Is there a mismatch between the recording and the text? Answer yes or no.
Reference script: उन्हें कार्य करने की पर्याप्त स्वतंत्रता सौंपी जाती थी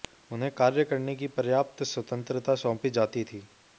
no